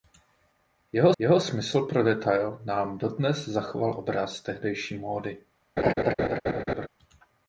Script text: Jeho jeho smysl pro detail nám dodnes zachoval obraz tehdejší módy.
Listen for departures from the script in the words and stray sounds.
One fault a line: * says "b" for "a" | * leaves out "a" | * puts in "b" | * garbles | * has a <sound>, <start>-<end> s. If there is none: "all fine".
* has a laugh, 5.8-6.9 s